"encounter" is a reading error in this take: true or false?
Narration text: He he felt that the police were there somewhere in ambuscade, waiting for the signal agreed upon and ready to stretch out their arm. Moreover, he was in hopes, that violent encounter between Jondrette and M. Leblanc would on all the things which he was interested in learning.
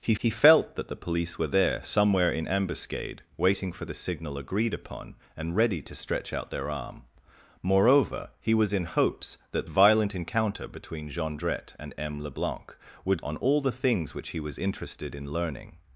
false